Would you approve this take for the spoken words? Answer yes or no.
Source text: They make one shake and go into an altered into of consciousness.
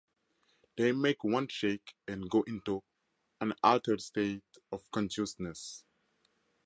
no